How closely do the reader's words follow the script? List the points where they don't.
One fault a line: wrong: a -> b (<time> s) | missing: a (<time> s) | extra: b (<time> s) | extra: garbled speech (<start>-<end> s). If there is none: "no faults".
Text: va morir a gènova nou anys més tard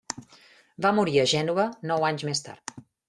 no faults